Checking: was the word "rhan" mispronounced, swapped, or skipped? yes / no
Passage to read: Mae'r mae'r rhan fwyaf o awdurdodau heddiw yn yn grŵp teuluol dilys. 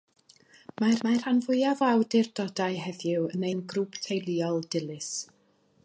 no